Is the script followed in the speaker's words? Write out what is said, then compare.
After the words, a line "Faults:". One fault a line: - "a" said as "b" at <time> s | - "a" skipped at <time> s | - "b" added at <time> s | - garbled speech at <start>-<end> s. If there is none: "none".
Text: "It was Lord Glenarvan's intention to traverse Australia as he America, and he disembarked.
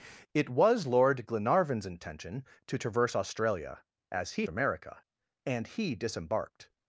"It was Lord Glenarvan's intention to traverse Australia as he America, and he disembarked.
Faults:
none